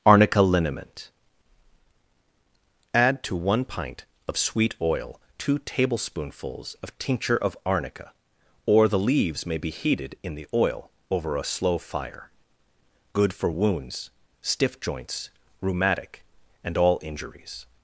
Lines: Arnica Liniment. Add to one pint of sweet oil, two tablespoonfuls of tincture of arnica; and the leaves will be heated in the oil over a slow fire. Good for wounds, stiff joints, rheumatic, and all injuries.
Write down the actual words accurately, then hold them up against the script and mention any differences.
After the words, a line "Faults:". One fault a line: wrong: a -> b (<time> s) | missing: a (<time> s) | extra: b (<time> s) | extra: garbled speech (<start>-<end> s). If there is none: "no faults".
Arnica Liniment. Add to one pint of sweet oil, two tablespoonfuls of tincture of arnica; or the leaves may be heated in the oil over a slow fire. Good for wounds, stiff joints, rheumatic, and all injuries.
Faults:
wrong: and -> or (8.7 s)
wrong: will -> may (9.4 s)